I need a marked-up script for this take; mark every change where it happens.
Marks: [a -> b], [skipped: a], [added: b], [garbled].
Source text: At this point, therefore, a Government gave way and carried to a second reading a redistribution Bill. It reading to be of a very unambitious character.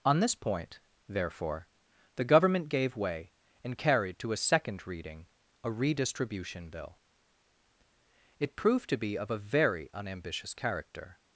[At -> On] this point, therefore, [a -> the] Government gave way and carried to a second reading a redistribution Bill. It [reading -> proved] to be of a very unambitious character.